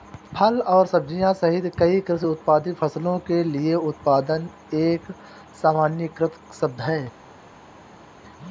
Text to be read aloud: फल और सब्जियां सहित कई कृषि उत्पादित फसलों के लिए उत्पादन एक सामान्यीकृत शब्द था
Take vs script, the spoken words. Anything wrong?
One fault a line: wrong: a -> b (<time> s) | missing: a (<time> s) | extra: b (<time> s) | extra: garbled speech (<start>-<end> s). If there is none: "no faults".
wrong: था -> है (6.8 s)